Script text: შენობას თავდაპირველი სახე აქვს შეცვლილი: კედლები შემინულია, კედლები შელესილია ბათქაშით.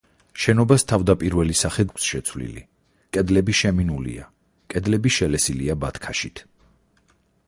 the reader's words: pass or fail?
pass